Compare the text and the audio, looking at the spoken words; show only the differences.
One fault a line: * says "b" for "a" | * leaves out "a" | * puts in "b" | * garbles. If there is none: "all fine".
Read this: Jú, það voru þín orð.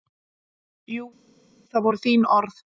all fine